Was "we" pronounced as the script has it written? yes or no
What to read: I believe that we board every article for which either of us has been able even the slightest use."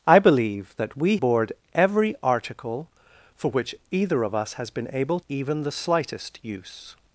yes